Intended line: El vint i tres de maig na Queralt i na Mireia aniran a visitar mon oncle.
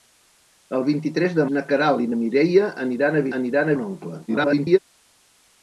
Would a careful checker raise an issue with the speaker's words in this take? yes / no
yes